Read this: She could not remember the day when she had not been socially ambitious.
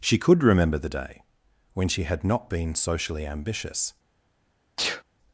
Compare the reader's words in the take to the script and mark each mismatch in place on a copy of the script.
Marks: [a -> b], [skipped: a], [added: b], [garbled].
She could [skipped: not] remember the day when she had not been socially ambitious.